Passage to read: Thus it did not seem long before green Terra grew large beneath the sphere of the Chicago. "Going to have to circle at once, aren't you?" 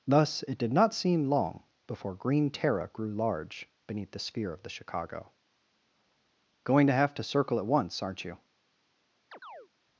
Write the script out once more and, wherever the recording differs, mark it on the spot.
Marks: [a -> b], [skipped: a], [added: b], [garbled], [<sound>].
Thus it did not seem long before green Terra grew large beneath the sphere of the Chicago. "Going to have to circle at once, aren't you?" [chirp]